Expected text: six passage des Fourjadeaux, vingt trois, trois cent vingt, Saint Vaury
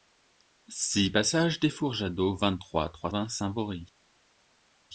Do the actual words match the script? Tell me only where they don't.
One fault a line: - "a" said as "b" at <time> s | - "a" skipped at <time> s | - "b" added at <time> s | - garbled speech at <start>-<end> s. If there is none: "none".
- "cent" skipped at 3.1 s